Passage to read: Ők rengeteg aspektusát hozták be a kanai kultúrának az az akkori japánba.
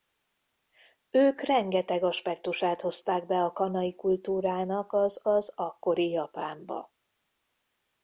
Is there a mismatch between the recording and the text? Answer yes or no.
no